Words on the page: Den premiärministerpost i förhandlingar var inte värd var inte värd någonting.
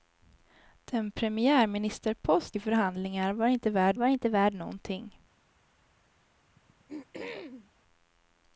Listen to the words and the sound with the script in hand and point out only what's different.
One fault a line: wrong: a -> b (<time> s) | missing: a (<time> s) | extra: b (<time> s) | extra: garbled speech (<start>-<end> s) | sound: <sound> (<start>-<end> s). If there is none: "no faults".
sound: throat clearing (6.5-7.7 s)